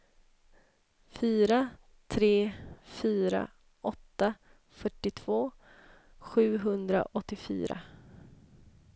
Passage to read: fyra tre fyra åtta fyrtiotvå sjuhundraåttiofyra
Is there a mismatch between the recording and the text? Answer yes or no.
no